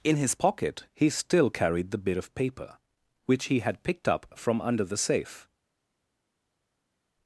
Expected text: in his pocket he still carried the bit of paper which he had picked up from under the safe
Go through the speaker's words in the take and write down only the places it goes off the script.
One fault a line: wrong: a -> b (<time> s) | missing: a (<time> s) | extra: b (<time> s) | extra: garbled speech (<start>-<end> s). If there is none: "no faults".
no faults